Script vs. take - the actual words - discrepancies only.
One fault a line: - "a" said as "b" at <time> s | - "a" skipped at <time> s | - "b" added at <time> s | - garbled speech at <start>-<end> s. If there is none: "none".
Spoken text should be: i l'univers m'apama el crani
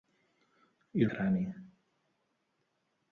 - "l'univers m'apama el" skipped at 1.1 s